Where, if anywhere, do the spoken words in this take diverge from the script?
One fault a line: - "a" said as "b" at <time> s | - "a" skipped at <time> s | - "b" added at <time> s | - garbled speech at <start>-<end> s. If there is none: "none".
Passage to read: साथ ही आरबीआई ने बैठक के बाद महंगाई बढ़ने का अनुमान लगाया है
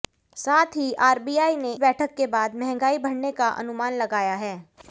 none